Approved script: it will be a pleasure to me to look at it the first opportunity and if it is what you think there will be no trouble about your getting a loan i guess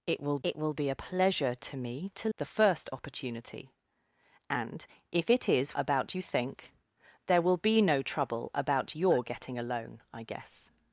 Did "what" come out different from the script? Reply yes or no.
yes